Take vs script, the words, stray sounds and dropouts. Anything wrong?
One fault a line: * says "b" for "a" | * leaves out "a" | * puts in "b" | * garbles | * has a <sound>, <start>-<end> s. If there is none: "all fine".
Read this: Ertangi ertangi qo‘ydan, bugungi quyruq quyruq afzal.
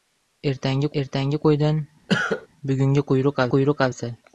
* has a cough, 2.1-2.5 s